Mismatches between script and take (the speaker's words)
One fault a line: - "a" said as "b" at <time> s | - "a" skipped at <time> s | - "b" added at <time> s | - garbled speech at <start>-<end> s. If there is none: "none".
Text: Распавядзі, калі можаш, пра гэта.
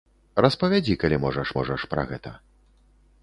- "можаш" added at 1.6 s